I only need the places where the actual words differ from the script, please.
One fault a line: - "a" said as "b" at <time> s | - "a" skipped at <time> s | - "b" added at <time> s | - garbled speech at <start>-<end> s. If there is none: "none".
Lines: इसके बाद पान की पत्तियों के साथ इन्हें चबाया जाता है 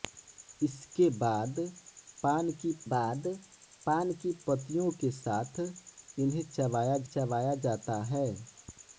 - "बाद पान की" added at 2.9 s
- "चबाया" added at 7.1 s